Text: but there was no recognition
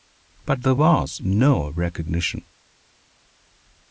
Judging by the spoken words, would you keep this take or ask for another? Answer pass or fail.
pass